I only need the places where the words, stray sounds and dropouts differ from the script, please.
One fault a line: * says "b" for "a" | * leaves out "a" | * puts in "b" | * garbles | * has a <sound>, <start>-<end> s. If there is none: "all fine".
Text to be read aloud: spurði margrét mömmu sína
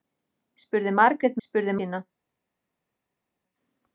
* says "spurði" for "mömmu"